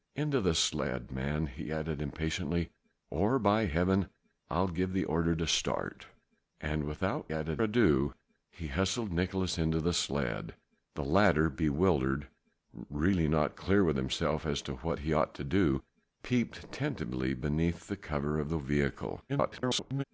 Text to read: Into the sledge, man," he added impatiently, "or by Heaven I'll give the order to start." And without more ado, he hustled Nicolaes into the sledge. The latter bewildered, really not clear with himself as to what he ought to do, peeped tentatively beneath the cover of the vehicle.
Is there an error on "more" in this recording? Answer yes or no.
yes